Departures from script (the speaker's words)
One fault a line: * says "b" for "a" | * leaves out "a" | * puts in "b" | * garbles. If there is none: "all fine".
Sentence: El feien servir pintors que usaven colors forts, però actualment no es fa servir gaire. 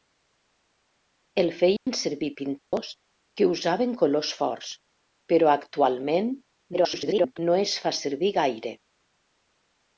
* garbles